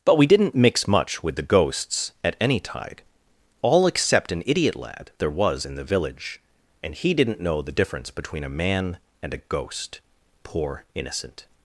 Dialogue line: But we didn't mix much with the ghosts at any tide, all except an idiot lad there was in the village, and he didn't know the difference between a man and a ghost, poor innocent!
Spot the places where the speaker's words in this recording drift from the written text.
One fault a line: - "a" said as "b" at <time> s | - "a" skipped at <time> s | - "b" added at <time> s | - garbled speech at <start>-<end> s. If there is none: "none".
none